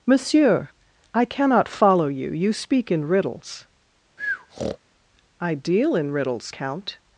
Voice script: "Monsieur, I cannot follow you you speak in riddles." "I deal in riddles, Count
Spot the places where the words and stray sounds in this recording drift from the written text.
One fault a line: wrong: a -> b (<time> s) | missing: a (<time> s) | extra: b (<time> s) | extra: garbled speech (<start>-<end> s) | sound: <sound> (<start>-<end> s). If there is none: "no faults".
sound: breath (4.2-4.8 s)